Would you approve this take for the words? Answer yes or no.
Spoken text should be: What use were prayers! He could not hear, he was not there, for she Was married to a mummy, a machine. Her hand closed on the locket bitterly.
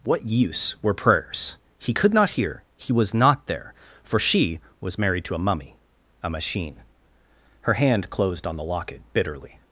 yes